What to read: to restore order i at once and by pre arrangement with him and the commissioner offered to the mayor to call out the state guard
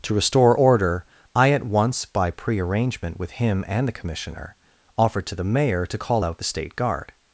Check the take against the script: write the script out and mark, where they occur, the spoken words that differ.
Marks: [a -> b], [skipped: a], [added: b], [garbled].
to restore order i at once [skipped: and] by pre arrangement with him and the commissioner offered to the mayor to call out the state guard